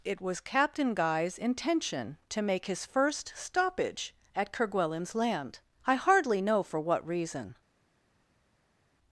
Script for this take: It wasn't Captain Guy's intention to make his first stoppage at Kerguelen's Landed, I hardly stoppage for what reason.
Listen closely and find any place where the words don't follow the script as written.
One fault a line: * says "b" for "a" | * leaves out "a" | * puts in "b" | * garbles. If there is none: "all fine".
* says "was" for "wasn't"
* says "Land" for "Landed"
* says "know" for "stoppage"